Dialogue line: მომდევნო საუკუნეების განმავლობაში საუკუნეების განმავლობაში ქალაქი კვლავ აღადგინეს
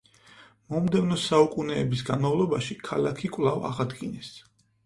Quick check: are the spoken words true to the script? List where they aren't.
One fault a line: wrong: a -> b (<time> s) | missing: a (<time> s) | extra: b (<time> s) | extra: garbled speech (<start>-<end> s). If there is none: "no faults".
missing: საუკუნეების განმავლობაში (2.8 s)